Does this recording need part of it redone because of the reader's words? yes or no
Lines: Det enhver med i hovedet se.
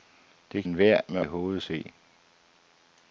no